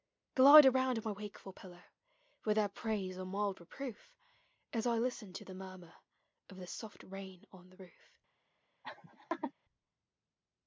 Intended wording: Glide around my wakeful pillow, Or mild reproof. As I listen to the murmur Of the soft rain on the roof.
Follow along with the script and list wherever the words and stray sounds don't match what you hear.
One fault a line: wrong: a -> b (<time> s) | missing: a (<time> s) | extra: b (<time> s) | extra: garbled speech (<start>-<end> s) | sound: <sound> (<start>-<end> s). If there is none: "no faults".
extra: With their praise (2.4 s)
sound: laugh (8.8-9.5 s)